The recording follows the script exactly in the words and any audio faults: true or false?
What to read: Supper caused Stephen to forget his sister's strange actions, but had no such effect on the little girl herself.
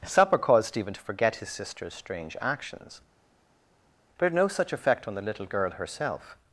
true